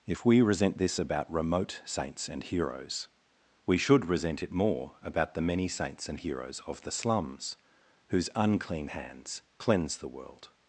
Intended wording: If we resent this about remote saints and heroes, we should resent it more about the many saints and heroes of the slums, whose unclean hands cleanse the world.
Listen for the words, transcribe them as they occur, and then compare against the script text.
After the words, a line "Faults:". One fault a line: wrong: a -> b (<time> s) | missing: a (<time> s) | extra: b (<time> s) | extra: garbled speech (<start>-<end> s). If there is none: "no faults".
If we resent this about remote saints and heroes, we should resent it more about the many saints and heroes of the slums, whose unclean hands cleanse the world.
Faults:
no faults